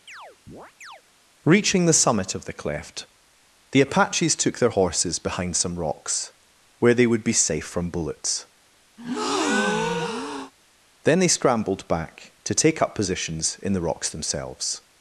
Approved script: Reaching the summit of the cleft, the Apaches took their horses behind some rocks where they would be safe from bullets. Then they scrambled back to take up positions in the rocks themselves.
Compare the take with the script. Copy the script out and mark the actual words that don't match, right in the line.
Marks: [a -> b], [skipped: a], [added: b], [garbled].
Reaching the summit of the cleft, the Apaches took their horses behind some rocks where they would be safe from bullets. Then they scrambled back to take up positions in the rocks themselves.